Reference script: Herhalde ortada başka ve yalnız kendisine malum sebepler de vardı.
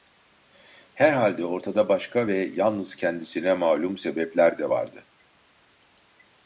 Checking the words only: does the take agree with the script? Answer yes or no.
yes